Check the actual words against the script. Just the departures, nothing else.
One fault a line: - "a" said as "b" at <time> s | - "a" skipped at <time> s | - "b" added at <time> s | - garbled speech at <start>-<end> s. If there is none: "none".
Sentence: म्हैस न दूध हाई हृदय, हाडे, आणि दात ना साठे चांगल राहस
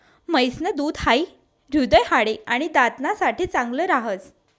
none